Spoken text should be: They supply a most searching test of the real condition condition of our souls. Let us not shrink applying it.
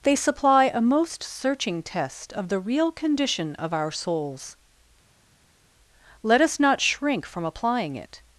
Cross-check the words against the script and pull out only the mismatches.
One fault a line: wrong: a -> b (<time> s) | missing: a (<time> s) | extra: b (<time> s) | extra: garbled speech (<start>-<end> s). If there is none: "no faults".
missing: condition (3.5 s)
extra: from (7.3 s)